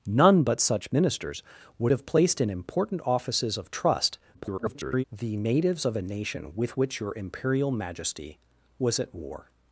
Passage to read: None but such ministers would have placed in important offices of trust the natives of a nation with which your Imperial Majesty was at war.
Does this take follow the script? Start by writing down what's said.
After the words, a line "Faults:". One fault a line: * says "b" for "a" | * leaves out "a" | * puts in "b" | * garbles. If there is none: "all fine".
None but such ministers would have placed in important offices of trust [garbled] the natives of a nation with which your Imperial Majesty was at war.
Faults:
* garbles